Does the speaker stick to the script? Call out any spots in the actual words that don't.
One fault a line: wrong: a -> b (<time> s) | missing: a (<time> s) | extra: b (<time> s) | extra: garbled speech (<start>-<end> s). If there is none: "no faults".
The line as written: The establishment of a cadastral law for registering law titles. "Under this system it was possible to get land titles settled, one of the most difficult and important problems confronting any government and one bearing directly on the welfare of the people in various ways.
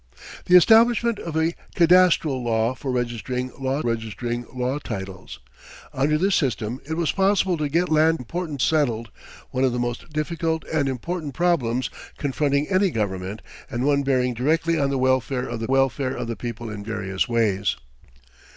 extra: registering law (3.8 s)
wrong: titles -> important (8.2 s)
extra: welfare of the (15.7 s)